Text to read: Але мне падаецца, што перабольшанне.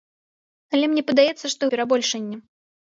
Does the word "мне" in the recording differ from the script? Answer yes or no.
no